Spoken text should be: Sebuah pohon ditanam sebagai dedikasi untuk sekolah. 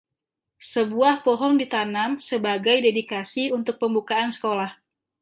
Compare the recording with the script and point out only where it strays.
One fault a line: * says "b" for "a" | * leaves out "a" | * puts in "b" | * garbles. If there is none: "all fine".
* puts in "pembukaan"